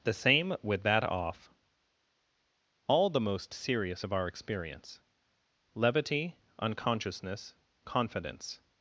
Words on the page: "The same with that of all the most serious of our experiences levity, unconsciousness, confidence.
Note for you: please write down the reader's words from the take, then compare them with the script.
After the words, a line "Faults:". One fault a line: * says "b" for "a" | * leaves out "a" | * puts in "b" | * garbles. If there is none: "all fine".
"The same with that off all the most serious of our experience levity, unconsciousness, confidence.
Faults:
* says "off" for "of"
* says "experience" for "experiences"